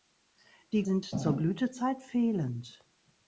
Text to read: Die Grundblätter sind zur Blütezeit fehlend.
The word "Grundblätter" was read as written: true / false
false